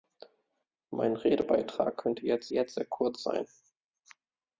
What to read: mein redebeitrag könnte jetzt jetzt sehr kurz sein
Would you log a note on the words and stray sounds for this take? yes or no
no